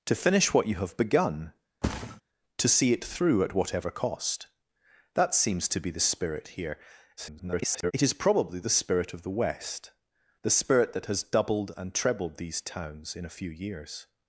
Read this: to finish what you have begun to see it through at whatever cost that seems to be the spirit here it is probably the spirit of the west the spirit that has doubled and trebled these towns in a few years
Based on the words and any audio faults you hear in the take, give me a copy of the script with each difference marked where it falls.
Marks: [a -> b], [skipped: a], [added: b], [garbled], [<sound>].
to finish what you have begun [thud] to see it through at whatever cost that seems to be the spirit here [garbled] it is probably the spirit of the west the spirit that has doubled and trebled these towns in a few years